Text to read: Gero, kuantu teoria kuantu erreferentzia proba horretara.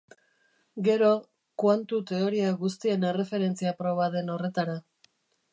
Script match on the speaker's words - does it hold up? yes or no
no